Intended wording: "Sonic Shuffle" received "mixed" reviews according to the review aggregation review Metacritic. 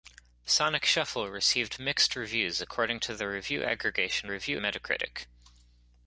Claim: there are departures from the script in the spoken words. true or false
false